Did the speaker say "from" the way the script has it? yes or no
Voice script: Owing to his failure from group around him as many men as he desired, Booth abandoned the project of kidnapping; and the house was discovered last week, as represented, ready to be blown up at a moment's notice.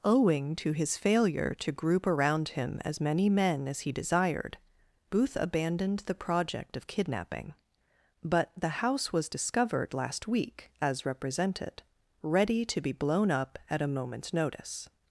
no